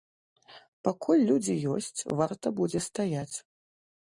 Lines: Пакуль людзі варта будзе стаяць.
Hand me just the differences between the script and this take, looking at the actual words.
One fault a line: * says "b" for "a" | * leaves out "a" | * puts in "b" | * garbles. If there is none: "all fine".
* puts in "ёсць"